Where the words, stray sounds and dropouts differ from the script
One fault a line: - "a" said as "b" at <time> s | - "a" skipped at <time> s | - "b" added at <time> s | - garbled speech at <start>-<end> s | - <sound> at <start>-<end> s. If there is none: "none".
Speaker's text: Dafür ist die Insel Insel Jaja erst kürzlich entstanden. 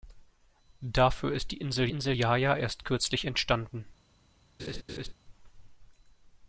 - laugh at 4.6-5.1 s